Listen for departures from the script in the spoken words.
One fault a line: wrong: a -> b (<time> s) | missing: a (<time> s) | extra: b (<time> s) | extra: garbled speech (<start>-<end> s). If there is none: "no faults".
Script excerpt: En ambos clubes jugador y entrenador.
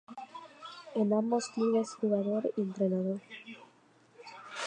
no faults